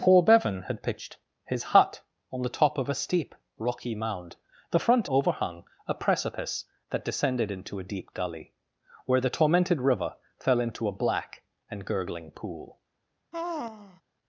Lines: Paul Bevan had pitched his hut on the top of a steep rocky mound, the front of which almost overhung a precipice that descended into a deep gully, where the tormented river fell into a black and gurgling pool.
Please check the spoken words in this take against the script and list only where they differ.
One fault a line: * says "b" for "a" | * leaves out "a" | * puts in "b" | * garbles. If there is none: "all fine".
* leaves out "of which almost"